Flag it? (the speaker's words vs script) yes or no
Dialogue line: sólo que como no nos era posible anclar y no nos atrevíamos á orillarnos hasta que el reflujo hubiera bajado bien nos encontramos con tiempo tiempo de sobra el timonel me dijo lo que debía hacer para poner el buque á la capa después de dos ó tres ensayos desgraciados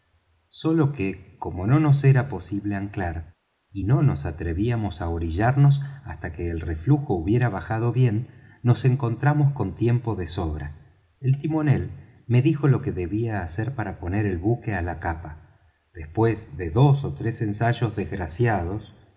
yes